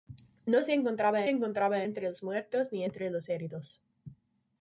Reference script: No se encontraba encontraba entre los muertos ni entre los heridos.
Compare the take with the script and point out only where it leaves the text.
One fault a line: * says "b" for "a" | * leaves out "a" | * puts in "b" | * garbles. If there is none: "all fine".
all fine